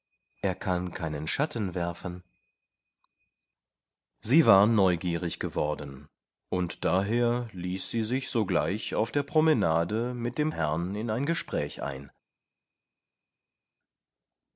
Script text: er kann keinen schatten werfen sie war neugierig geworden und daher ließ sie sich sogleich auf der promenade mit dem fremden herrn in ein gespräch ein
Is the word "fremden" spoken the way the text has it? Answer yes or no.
no